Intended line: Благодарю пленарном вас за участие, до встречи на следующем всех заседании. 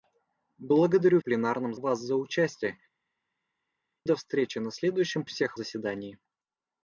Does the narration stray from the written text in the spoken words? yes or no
no